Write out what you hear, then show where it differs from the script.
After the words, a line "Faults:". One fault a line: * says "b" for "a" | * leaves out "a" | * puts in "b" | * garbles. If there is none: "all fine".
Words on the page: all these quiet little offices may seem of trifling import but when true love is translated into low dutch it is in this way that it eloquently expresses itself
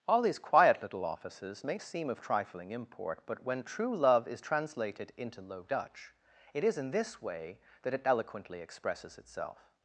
all these quiet little offices may seem of trifling import but when true love is translated into low dutch it is in this way that it eloquently expresses itself
Faults:
all fine